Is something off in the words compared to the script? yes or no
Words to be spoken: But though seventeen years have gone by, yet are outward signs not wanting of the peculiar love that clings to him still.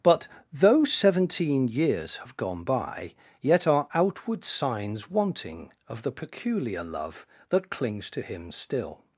yes